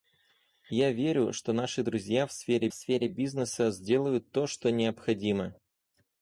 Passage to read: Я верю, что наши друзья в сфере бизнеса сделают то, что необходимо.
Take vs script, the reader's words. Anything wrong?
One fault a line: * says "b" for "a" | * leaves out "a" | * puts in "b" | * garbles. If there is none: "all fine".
* puts in "сфере"